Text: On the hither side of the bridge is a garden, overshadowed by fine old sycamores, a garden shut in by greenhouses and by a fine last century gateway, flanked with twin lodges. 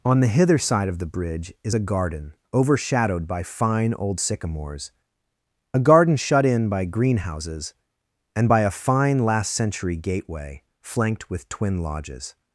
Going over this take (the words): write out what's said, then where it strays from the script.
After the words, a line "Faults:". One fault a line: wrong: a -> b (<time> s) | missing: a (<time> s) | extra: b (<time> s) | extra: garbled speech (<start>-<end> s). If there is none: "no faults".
On the hither side of the bridge is a garden, overshadowed by fine old sycamores, a garden shut in by greenhouses and by a fine last century gateway, flanked with twin lodges.
Faults:
no faults